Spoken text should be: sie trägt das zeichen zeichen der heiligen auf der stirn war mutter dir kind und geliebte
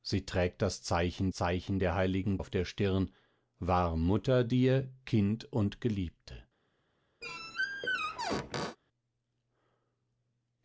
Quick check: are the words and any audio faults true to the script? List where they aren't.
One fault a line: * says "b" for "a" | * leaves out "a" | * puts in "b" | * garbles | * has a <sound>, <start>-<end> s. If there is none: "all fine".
* has a squeak, 7.2-8.8 s